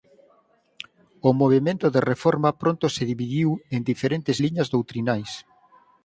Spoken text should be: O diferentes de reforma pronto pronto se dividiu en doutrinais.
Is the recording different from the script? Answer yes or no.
yes